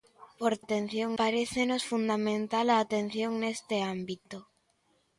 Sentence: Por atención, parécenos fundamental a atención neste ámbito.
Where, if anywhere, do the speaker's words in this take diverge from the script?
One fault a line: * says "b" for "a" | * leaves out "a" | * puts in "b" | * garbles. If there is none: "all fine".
all fine